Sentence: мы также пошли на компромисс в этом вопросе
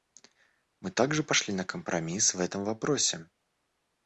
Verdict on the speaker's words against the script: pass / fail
pass